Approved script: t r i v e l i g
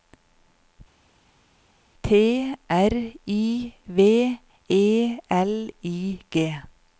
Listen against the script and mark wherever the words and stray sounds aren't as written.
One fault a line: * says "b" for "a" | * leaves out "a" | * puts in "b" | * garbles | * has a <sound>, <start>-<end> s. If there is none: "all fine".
all fine